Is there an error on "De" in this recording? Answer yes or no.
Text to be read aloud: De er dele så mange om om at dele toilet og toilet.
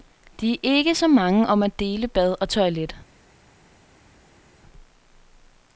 no